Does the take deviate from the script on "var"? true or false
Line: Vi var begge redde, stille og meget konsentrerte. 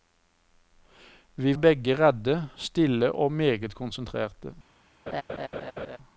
true